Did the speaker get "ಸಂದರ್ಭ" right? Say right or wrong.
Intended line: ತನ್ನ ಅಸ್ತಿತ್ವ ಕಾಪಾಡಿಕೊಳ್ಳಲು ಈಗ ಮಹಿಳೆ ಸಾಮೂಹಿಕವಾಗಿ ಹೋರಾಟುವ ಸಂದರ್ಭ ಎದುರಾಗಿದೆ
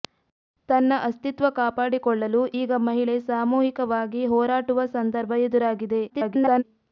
right